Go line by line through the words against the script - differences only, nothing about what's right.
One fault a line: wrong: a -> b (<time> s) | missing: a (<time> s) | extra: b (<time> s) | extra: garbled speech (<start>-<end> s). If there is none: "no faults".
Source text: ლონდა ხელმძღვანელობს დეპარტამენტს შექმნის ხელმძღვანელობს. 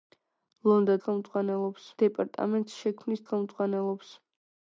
no faults